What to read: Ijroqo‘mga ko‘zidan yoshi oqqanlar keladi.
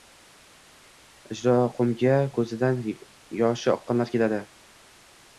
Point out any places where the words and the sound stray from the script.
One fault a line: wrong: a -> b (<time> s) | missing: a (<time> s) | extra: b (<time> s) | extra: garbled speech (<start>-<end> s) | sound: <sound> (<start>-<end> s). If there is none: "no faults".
no faults